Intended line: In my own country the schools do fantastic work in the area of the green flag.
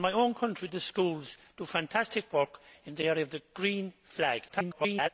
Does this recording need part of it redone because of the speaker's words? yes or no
yes